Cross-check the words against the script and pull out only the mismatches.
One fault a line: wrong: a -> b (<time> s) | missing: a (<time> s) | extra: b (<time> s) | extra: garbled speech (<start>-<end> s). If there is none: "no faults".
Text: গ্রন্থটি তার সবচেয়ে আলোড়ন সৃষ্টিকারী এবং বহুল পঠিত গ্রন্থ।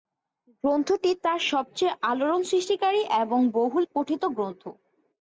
no faults